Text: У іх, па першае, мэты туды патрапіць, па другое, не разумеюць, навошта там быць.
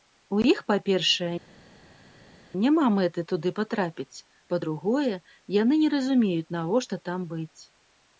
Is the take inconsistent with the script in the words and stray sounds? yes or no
yes